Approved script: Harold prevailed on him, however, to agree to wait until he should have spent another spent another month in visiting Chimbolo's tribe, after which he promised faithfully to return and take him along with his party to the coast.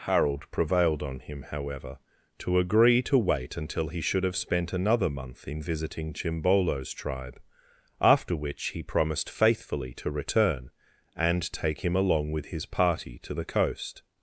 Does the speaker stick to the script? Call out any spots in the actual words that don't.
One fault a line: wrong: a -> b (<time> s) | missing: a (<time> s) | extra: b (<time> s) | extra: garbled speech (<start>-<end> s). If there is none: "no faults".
missing: spent another (5.1 s)